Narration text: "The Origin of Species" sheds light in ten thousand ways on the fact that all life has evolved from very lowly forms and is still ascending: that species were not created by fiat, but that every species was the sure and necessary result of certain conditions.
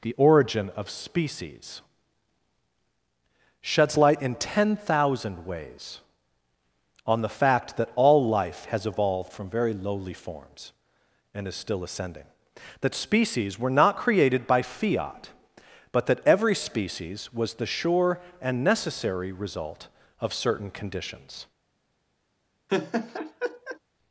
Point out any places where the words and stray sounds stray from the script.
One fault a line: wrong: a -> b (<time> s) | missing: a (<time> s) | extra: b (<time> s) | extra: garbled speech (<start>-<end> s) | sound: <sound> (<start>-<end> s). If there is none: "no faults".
sound: laugh (22.7-23.8 s)